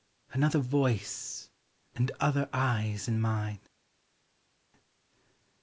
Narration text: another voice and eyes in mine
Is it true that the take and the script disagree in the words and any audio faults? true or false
true